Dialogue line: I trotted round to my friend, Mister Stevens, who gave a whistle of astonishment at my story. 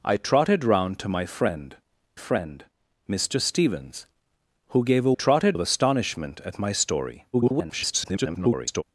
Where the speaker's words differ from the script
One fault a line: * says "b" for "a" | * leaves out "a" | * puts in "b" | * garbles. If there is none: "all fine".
* puts in "friend"
* says "trotted" for "whistle"
* garbles